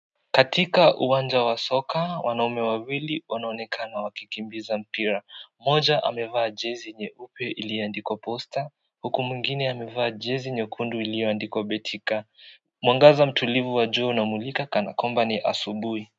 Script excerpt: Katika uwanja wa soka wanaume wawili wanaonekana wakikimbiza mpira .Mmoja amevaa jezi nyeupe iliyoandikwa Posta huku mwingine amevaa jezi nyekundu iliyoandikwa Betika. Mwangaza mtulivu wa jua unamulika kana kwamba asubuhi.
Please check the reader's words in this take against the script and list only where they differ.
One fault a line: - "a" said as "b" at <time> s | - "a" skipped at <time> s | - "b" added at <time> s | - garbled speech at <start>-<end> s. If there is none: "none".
- "ni" added at 15.2 s